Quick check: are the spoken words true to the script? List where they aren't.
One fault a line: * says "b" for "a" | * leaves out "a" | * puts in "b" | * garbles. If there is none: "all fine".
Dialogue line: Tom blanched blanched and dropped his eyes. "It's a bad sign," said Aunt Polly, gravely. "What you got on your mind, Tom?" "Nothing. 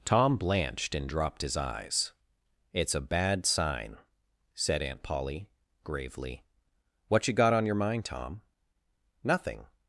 * leaves out "blanched"